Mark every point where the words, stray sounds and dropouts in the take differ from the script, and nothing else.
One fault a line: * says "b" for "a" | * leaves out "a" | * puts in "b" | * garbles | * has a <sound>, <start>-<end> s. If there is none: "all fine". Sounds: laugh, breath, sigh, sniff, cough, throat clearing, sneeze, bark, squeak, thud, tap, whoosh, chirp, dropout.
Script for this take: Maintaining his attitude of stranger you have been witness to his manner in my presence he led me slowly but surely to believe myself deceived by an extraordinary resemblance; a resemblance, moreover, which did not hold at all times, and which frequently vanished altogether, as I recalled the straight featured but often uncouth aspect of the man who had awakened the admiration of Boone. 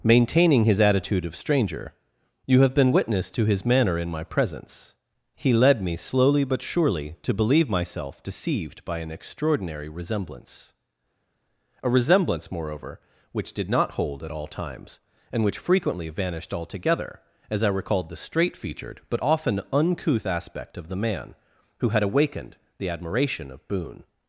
all fine